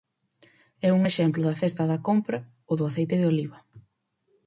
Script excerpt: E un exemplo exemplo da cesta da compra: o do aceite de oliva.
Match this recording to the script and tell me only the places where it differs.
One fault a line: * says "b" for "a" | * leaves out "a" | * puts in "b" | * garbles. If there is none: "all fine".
* leaves out "exemplo"